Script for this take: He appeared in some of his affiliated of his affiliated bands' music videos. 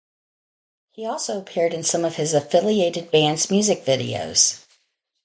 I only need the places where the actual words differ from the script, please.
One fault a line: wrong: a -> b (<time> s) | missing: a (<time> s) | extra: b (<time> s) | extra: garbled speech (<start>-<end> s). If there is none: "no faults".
extra: also (1.1 s)
missing: of his affiliated (3.1 s)